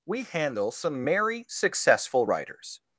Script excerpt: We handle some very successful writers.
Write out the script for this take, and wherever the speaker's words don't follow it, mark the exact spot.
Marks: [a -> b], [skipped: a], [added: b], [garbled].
We handle some [very -> merry] successful writers.